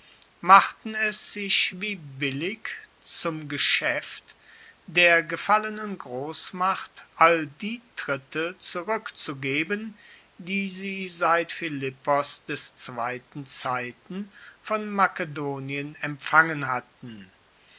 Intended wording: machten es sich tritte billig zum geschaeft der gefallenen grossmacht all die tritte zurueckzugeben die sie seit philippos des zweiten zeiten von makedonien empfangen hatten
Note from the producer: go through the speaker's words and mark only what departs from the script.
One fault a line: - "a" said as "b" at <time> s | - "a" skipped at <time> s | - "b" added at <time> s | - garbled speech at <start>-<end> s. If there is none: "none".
- "tritte" said as "wie" at 1.8 s